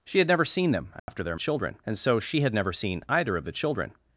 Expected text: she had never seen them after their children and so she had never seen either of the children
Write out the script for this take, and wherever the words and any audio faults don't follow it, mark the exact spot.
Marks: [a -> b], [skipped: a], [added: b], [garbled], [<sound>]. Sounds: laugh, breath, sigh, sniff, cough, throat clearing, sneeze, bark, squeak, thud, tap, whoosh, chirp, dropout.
she had never seen them after [dropout] their children and so she had never seen either of the children